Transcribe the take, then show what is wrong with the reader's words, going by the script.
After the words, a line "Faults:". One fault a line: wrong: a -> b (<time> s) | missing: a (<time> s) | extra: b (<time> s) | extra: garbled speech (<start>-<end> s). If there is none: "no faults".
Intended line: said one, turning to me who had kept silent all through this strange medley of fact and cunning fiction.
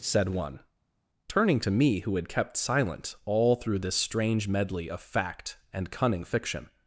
said one, turning to me who had kept silent all through this strange medley of fact and cunning fiction.
Faults:
no faults